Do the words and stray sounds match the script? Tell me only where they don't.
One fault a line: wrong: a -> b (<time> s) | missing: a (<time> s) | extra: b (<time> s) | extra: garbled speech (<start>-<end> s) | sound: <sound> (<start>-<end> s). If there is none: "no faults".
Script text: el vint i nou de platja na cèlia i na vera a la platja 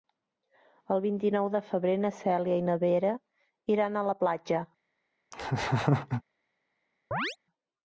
wrong: platja -> febrer (1.7 s)
extra: iran (3.8 s)
sound: laugh (5.3-6.2 s)
sound: chirp (7.1-7.4 s)